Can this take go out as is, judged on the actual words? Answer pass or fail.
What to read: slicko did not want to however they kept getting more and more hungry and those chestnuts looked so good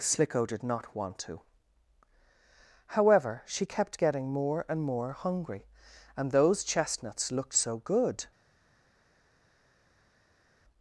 fail